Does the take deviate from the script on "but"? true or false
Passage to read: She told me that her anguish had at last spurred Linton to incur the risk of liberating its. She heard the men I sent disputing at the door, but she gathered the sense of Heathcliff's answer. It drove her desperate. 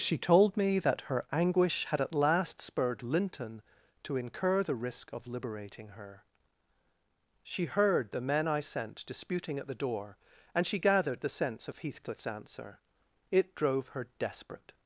true